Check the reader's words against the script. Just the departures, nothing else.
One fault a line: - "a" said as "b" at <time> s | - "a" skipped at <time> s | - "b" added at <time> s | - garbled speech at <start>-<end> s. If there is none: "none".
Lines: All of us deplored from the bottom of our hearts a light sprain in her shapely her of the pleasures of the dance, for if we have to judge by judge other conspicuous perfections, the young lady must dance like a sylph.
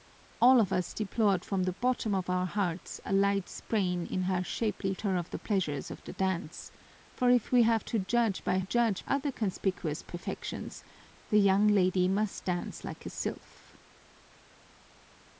none